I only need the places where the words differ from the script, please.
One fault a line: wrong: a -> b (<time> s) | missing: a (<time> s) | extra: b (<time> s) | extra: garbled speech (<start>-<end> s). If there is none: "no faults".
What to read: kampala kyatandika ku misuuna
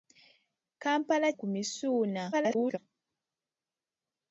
missing: kyatandika (1.3 s)
extra: garbled speech (2.3-2.8 s)